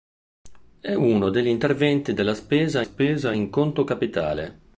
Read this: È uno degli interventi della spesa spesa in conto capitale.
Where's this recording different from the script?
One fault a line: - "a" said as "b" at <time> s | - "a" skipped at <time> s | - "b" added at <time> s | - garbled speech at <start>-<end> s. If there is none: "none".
none